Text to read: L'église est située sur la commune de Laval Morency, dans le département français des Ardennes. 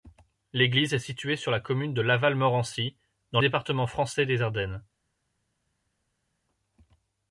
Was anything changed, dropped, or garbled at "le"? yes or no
yes